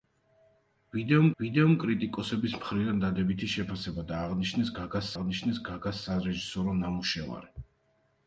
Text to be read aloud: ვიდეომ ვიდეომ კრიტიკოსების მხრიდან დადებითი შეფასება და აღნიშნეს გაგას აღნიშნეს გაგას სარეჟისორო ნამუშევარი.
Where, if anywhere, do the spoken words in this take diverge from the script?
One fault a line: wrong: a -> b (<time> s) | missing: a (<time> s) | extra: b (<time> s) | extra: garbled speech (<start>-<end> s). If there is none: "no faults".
no faults